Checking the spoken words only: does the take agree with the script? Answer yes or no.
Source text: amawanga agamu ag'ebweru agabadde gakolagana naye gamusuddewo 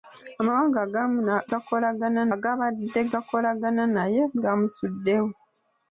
no